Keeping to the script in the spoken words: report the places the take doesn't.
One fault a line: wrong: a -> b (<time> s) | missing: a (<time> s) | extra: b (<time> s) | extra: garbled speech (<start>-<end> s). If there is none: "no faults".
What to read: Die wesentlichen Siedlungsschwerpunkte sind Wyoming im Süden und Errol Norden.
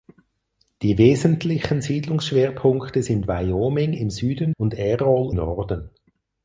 no faults